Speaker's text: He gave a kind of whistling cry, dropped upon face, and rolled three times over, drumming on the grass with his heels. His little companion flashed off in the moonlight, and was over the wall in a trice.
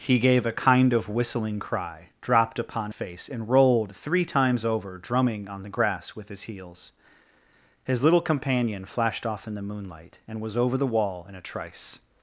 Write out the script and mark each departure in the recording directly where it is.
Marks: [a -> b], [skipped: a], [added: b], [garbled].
He gave a kind of whistling cry, dropped upon face, and rolled three times over, drumming on the grass with his heels. His little companion flashed off in the moonlight, and was over the wall in a trice.